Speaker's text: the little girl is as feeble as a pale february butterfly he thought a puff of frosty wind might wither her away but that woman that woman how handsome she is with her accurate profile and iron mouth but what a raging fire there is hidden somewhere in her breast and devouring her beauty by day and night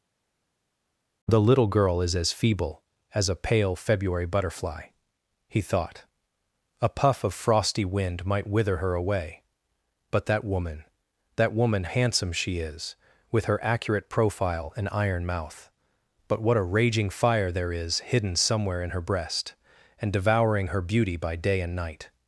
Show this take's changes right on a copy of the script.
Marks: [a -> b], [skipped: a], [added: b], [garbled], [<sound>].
the little girl is as feeble as a pale february butterfly he thought a puff of frosty wind might wither her away but that woman that woman [skipped: how] handsome she is with her accurate profile and iron mouth but what a raging fire there is hidden somewhere in her breast and devouring her beauty by day and night